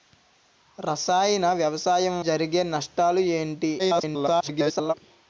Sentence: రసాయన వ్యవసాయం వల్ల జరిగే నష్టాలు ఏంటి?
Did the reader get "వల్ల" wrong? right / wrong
wrong